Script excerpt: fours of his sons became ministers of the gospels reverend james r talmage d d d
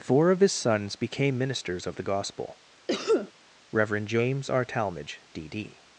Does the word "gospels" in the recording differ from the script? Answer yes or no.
yes